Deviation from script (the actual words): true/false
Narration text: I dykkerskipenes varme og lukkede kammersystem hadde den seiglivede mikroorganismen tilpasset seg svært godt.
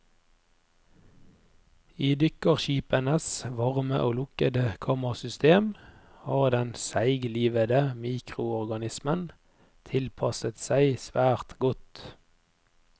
true